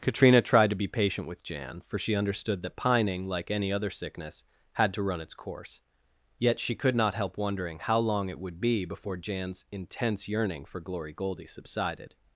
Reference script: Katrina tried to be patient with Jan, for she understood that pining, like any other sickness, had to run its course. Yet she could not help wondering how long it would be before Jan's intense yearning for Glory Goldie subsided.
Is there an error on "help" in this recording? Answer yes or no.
no